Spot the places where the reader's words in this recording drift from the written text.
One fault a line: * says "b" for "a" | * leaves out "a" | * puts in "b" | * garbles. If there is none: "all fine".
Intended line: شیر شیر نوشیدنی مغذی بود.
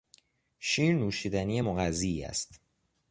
* leaves out "شیر"
* says "است" for "بود"